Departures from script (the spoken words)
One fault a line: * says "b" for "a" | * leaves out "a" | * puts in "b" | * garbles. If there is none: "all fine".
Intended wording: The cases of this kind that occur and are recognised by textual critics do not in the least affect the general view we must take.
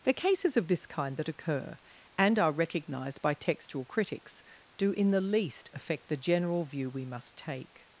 * leaves out "not"